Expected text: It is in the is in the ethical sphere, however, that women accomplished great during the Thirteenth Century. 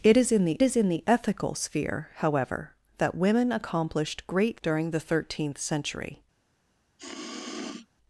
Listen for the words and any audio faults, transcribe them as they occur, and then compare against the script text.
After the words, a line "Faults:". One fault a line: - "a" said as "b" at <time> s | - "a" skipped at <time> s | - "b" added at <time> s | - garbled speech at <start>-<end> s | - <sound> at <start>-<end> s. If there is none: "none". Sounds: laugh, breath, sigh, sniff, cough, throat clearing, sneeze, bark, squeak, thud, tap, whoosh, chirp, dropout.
It is in the is in the ethical sphere, however, that women accomplished great during the Thirteenth Century.
Faults:
- sniff at 7.0-7.9 s